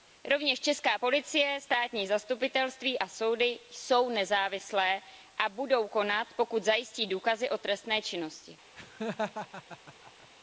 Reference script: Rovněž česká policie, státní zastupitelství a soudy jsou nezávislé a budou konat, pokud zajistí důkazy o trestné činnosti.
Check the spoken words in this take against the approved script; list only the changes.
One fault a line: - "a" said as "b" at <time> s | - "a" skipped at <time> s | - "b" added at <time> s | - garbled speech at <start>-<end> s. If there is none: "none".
none